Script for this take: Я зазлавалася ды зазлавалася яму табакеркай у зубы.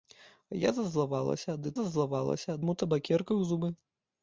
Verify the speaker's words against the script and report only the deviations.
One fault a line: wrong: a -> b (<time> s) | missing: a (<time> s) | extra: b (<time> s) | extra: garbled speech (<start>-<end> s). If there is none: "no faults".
no faults